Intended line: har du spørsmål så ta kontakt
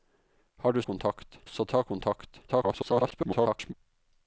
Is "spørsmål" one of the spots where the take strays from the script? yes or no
yes